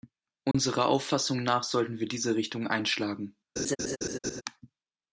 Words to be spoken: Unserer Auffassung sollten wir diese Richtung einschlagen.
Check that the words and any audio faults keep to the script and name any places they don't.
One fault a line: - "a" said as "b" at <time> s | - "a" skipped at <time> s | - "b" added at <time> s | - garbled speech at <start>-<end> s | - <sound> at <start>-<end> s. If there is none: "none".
- dropout at 0.5-0.5 s
- "nach" added at 1.4 s
- laugh at 3.6-4.4 s